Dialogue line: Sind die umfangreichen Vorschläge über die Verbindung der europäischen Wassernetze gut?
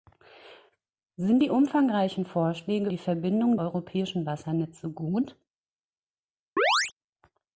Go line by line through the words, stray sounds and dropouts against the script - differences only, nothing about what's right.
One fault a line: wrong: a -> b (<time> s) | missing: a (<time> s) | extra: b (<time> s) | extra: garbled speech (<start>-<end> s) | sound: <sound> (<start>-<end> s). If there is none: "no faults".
missing: über (2.9 s)
missing: der (3.6 s)
sound: chirp (6.6-6.9 s)